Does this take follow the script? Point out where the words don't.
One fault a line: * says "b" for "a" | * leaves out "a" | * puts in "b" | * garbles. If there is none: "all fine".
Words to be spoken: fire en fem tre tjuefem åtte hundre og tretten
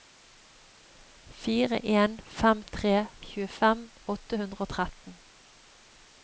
all fine